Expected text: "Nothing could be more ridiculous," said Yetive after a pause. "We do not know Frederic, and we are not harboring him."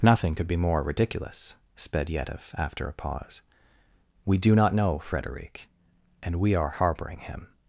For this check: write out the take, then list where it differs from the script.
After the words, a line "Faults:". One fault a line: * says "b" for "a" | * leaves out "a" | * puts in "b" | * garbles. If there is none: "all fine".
"Nothing could be more ridiculous," sped Yetive after a pause. "We do not know Frederic, and we are harboring him."
Faults:
* says "sped" for "said"
* leaves out "not"